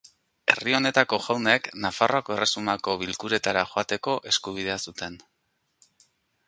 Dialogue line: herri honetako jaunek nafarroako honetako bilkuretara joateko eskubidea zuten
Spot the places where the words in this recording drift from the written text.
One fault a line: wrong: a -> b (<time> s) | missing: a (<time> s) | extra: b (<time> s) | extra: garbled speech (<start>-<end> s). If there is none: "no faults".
wrong: honetako -> erresumako (2.3 s)